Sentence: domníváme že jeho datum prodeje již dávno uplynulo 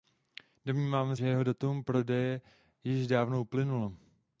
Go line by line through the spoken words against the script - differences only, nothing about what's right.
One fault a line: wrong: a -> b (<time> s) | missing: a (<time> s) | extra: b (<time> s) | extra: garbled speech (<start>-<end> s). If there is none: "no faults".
no faults